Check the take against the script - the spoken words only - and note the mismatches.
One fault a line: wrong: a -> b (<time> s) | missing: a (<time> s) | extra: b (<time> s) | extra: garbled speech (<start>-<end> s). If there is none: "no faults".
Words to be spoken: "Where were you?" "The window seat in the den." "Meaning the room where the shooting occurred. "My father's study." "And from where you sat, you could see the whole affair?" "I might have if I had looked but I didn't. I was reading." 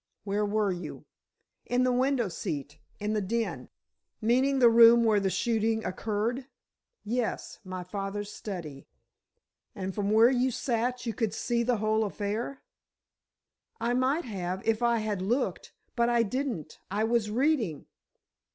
extra: In (1.6 s)
extra: Yes (7.0 s)